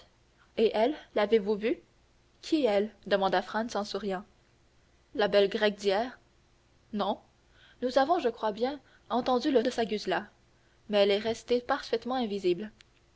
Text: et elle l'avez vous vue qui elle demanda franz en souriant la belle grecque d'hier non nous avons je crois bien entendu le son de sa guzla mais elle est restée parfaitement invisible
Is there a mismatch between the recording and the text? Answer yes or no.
yes